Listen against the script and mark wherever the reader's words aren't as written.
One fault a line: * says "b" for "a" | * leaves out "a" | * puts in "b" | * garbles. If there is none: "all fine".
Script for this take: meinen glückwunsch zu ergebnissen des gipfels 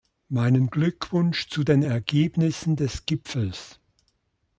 * puts in "den"